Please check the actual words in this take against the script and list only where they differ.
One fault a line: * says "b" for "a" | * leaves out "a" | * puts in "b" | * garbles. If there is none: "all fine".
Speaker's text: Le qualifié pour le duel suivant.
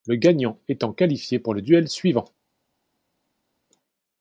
* puts in "gagnant étant"